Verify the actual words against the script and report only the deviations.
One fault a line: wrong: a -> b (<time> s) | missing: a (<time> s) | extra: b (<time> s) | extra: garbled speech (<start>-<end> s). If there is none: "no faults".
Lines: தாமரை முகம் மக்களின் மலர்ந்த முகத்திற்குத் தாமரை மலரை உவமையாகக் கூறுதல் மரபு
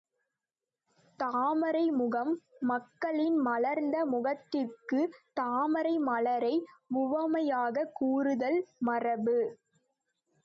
no faults